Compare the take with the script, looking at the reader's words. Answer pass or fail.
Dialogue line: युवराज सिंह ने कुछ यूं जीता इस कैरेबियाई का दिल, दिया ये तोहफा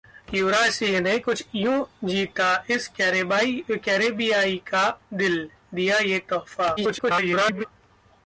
fail